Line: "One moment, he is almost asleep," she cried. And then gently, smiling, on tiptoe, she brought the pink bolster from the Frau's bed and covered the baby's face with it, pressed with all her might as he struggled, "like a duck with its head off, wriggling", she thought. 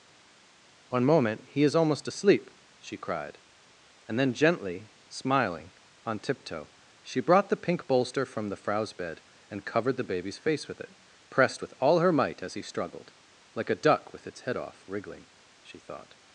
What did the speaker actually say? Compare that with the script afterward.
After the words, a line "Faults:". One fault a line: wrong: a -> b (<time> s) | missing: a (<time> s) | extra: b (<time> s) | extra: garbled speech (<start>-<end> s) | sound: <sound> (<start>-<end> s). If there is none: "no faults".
"One moment, he is almost asleep," she cried. And then gently, smiling, on tiptoe, she brought the pink bolster from the Frau's bed and covered the baby's face with it, pressed with all her might as he struggled, "like a duck with its head off, wriggling", she thought.
Faults:
no faults